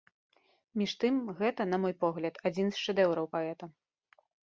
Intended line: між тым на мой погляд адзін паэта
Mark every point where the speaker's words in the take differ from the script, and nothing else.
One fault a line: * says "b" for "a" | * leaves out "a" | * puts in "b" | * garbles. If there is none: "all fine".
* puts in "гэта"
* puts in "з шэдэўраў"